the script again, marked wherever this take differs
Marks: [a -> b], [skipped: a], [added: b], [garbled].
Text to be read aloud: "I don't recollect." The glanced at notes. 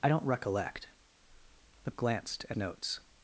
"I don't recollect." The glanced at notes.